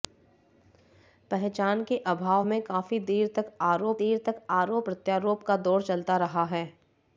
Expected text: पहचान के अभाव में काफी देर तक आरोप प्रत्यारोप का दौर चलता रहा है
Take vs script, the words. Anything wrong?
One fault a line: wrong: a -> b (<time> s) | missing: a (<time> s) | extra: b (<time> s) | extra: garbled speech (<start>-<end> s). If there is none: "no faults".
extra: देर तक आरोप (4.0 s)